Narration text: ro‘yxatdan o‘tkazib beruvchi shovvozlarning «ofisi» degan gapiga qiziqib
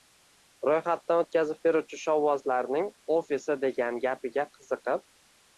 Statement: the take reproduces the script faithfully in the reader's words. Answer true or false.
true